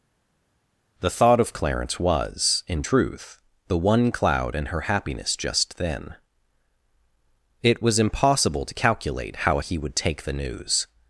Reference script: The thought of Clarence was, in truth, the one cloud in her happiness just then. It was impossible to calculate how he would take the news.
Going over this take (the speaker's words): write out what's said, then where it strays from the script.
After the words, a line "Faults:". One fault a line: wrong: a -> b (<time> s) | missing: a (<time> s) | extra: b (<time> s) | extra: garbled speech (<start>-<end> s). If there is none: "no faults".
The thought of Clarence was, in truth, the one cloud in her happiness just then. It was impossible to calculate how he would take the news.
Faults:
no faults